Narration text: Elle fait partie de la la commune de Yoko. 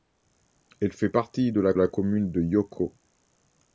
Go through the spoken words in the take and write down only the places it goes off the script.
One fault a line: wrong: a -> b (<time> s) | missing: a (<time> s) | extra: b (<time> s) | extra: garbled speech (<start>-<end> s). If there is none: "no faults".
no faults